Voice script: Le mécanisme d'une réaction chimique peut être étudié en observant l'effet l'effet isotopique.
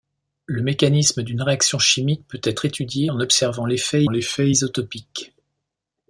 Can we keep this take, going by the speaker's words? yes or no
yes